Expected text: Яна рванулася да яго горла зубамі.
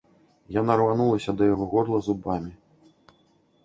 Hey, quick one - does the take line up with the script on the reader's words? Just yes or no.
yes